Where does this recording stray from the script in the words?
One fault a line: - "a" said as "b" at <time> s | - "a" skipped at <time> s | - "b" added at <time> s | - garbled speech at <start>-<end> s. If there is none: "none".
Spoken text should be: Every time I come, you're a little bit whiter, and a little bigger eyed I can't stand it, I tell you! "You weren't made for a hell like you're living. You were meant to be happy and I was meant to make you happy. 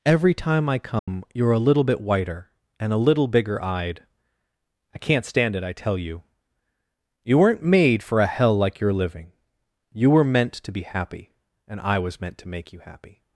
none